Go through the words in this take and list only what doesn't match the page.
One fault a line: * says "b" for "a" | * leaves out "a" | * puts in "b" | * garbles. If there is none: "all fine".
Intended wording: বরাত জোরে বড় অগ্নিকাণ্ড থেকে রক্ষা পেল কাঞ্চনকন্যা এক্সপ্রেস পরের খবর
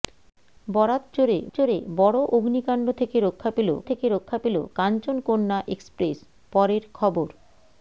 * puts in "জোরে"
* puts in "থেকে রক্ষা পেল"